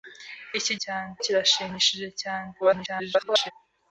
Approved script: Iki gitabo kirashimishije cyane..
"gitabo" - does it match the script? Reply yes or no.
no